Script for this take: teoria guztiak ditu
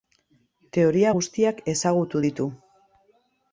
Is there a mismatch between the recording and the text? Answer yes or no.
yes